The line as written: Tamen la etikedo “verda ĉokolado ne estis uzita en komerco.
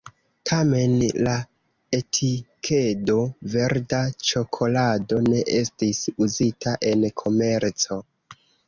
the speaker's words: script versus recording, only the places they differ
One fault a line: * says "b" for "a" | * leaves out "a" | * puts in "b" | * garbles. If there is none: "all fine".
all fine